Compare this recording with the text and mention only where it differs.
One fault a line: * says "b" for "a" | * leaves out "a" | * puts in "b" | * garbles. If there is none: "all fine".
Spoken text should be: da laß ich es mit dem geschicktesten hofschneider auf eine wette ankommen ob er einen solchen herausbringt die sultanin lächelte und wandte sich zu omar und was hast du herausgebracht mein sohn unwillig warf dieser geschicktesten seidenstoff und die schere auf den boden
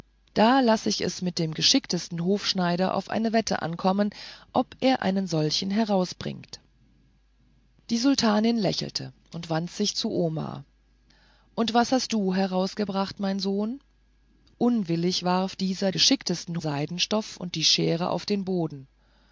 all fine